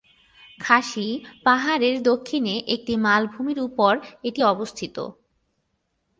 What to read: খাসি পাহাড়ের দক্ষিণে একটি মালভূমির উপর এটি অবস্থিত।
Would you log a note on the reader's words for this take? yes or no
no